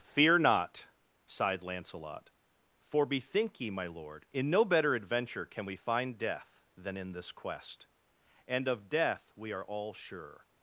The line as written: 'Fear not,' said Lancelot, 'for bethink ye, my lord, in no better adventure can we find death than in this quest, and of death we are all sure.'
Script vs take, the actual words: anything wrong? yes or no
yes